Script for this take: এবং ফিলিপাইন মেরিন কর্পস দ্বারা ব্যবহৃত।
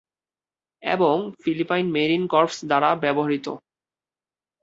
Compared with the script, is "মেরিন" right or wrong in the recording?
right